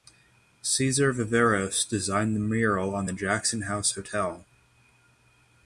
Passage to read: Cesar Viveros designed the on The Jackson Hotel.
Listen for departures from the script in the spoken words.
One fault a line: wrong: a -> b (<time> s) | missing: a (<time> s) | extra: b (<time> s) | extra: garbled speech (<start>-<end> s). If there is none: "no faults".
extra: mural (2.4 s)
extra: House (3.6 s)